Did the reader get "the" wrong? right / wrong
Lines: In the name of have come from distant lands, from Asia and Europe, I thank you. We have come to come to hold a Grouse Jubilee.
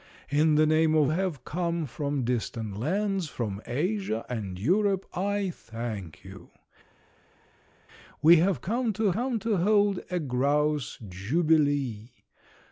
right